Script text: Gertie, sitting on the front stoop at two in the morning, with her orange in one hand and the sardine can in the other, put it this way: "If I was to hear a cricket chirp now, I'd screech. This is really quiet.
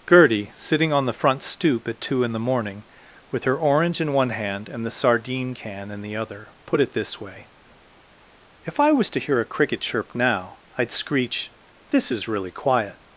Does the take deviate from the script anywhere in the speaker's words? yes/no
no